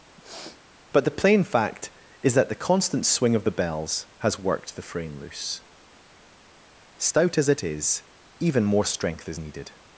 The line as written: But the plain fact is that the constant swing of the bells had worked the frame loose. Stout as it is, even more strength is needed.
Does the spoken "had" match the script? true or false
false